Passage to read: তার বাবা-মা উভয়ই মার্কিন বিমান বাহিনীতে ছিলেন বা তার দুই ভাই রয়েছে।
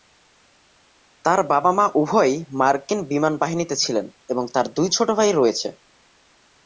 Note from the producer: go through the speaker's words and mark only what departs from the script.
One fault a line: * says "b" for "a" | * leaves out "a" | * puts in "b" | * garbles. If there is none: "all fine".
* says "এবং" for "বা"
* puts in "ছোট"